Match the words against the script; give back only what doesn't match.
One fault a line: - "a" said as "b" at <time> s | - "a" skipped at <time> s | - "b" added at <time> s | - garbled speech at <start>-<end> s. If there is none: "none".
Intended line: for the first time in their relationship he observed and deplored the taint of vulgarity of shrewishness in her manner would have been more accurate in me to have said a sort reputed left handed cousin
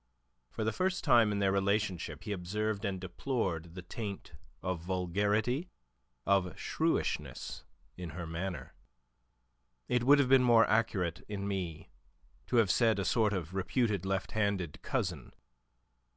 - "it" added at 9.9 s
- "of" added at 13.3 s